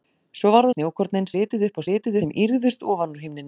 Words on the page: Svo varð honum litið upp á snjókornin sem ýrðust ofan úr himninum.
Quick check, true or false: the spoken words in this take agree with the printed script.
false